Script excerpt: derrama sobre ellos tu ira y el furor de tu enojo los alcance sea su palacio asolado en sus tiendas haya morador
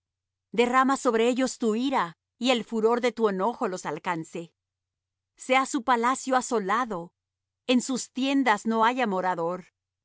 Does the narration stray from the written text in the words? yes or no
yes